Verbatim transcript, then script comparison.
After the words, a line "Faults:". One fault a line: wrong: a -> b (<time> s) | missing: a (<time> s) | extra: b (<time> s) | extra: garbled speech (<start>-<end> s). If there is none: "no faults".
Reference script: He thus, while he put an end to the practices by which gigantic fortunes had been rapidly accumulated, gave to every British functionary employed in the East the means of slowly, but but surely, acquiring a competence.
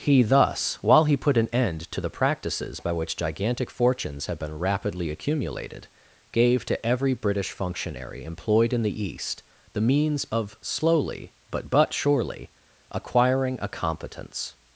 He thus, while he put an end to the practices by which gigantic fortunes had been rapidly accumulated, gave to every British functionary employed in the East the means of slowly, but but surely, acquiring a competence.
Faults:
no faults